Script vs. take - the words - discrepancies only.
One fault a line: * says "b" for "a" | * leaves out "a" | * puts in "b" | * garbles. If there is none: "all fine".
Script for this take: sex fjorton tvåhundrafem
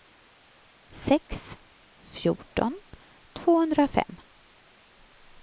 all fine